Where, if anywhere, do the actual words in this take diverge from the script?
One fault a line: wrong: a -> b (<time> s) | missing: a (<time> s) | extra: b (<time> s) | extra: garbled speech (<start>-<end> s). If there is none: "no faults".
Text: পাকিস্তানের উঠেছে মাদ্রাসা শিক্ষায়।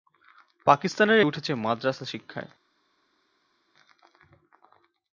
no faults